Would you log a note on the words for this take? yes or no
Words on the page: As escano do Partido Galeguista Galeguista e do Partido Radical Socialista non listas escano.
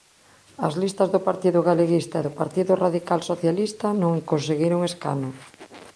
yes